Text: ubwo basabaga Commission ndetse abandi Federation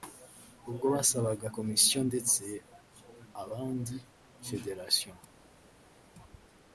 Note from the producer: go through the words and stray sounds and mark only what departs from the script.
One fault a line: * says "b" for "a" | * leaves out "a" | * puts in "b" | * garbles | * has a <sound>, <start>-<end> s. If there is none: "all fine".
all fine